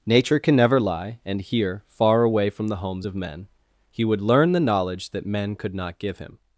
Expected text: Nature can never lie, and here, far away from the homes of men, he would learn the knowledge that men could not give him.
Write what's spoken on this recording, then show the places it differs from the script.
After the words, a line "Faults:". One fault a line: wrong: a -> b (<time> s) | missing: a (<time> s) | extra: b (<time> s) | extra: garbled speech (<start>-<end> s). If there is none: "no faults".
Nature can never lie, and here, far away from the homes of men, he would learn the knowledge that men could not give him.
Faults:
no faults